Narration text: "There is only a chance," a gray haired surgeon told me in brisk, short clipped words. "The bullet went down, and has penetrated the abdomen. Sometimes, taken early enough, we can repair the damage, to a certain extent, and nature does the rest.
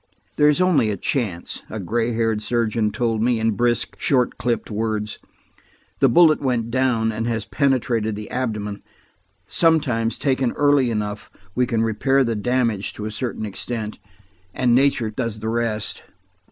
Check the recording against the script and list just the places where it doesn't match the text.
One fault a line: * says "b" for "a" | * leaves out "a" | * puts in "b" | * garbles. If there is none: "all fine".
all fine